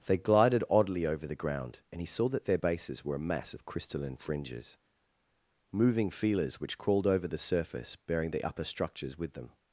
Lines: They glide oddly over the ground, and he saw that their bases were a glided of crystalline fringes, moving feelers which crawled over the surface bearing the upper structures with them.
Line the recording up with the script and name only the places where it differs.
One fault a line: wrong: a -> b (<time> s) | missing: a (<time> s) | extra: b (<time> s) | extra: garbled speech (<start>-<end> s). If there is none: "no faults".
wrong: glide -> glided (0.2 s)
wrong: glided -> mass (3.2 s)